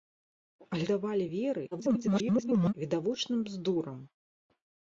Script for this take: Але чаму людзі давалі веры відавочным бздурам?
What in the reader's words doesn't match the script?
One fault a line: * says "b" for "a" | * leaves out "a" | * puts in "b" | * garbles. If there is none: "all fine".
* leaves out "чаму людзі"
* garbles